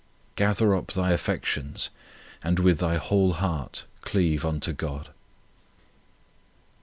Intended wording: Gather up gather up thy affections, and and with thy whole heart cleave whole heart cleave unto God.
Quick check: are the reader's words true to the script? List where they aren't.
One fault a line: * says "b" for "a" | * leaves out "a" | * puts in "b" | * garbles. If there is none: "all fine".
* leaves out "gather up"
* leaves out "and"
* leaves out "whole heart cleave"